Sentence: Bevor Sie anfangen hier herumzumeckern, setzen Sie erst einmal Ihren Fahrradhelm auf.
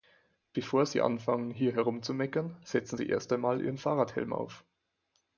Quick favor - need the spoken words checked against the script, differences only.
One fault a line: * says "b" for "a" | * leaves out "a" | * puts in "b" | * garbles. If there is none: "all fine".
all fine